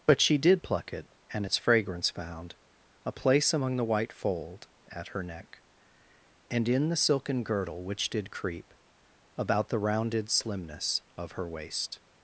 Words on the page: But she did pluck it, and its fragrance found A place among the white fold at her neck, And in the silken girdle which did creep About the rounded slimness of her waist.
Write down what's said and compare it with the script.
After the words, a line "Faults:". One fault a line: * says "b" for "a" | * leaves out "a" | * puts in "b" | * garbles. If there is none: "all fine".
But she did pluck it, and its fragrance found A place among the white fold at her neck, And in the silken girdle which did creep About the rounded slimness of her waist.
Faults:
all fine